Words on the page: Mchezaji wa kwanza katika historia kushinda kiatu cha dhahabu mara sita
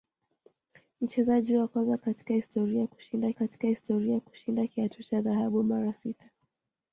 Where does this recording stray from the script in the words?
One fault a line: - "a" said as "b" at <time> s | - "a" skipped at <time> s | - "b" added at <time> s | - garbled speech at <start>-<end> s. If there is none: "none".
- "katika historia kushinda" added at 3.3 s